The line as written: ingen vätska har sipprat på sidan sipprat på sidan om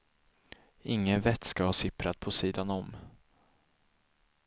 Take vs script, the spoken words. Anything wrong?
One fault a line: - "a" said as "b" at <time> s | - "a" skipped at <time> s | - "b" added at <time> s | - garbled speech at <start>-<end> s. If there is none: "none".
- "sipprat på sidan" skipped at 2.7 s